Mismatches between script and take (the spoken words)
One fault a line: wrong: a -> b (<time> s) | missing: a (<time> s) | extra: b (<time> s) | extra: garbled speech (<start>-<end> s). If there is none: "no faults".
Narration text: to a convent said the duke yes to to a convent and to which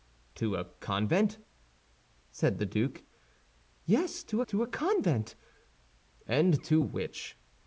no faults